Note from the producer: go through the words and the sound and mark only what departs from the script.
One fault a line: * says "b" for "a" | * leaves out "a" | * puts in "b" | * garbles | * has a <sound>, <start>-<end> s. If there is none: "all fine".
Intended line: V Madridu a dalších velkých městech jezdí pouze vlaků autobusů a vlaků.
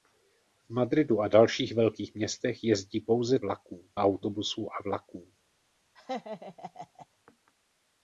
* has a laugh, 6.0-7.1 s